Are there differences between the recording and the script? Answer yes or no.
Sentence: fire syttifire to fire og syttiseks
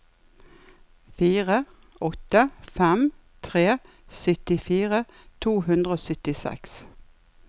yes